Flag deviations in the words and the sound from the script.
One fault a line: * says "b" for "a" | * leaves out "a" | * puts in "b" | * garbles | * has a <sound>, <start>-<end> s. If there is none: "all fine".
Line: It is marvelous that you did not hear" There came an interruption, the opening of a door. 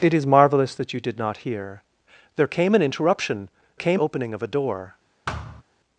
* says "came" for "the"
* has a thud, 5.3-5.6 s